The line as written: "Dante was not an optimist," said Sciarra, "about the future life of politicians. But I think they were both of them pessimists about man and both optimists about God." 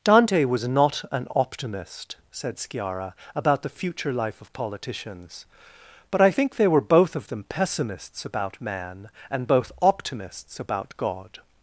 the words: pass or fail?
pass